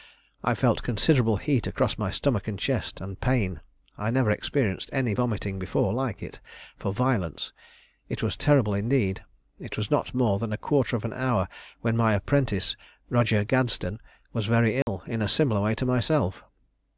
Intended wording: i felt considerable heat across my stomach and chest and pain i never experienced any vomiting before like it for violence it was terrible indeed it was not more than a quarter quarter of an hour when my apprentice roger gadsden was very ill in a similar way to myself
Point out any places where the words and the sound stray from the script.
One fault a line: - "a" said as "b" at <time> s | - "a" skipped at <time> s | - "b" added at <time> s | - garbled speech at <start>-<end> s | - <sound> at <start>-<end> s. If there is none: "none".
- "quarter" skipped at 10.9 s
- dropout at 14.8-14.9 s